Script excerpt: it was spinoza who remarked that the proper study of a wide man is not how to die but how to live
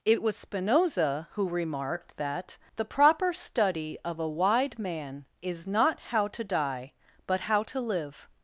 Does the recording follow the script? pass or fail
pass